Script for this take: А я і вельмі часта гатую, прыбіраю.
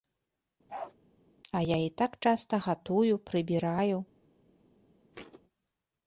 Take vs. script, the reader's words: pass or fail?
fail